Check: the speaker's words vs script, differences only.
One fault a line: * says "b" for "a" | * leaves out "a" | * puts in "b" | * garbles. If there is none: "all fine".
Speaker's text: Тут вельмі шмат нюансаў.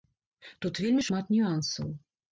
all fine